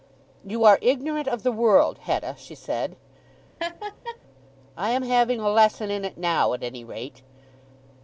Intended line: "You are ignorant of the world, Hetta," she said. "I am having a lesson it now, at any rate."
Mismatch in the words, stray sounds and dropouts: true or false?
true